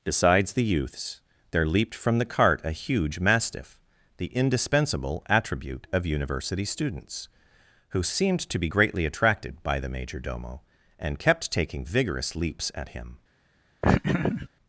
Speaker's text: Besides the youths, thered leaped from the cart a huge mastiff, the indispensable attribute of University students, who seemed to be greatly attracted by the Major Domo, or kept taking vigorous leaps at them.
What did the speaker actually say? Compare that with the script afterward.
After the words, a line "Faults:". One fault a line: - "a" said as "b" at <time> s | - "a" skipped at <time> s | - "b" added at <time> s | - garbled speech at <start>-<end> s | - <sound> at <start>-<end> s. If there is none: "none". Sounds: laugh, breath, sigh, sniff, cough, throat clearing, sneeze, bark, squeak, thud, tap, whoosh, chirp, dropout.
Besides the youths, there leaped from the cart a huge mastiff, the indispensable attribute of University students, who seemed to be greatly attracted by the Major Domo, and kept taking vigorous leaps at him.
Faults:
- "thered" said as "there" at 1.5 s
- "or" said as "and" at 11.0 s
- "them" said as "him" at 12.9 s
- laugh at 13.8-14.5 s